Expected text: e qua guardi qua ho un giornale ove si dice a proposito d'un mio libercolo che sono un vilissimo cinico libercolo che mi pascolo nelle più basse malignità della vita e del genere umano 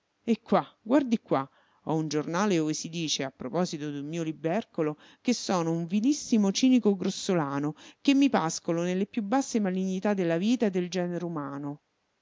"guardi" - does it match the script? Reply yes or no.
yes